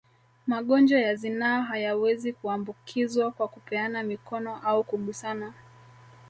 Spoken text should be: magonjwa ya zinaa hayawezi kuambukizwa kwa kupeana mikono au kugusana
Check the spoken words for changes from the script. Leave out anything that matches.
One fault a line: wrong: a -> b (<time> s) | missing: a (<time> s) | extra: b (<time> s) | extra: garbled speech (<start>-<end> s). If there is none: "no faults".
no faults